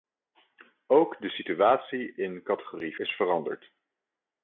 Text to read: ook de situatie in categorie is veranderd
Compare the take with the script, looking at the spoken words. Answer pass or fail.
pass